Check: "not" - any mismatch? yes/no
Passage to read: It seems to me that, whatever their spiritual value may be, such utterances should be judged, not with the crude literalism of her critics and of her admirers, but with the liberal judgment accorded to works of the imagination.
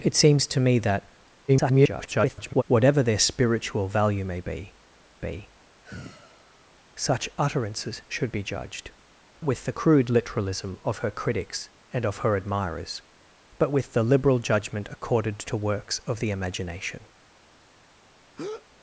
yes